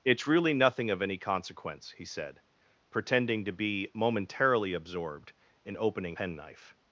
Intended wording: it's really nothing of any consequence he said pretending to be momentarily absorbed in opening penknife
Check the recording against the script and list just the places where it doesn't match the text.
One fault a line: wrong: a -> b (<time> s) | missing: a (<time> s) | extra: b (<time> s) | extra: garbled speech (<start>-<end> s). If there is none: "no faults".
no faults